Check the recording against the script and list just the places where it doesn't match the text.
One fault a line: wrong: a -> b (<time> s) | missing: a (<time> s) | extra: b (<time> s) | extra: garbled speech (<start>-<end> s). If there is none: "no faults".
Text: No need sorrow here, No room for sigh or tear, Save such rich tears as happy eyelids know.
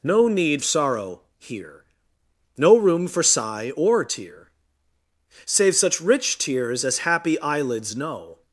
no faults